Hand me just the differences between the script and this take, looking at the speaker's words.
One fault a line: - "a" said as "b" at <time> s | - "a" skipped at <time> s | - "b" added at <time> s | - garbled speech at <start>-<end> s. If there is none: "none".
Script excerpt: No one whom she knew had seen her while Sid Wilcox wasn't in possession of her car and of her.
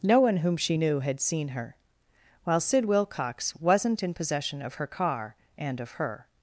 none